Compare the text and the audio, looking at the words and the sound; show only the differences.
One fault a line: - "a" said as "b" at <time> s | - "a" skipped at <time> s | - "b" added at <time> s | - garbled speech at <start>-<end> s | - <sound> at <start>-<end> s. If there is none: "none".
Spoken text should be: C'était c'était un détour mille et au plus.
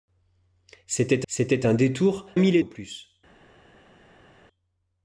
none